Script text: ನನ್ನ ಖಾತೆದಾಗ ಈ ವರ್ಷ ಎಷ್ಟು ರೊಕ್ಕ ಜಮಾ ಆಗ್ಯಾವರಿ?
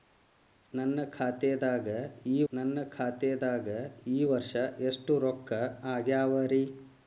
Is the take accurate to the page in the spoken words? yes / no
no